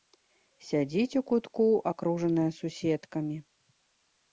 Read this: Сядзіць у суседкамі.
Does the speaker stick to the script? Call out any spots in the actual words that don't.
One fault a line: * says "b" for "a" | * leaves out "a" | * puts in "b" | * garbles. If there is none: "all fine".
* puts in "кутку акружаная"